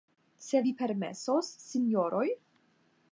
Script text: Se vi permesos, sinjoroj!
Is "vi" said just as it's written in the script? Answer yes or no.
yes